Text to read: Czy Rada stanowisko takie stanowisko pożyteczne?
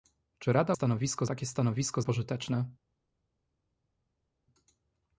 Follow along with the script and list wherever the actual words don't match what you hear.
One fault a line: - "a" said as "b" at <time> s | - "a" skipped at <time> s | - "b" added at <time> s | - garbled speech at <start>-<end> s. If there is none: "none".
none